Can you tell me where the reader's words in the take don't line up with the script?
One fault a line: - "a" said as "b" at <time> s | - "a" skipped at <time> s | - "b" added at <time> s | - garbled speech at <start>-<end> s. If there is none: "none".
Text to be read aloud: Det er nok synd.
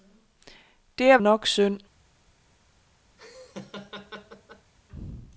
none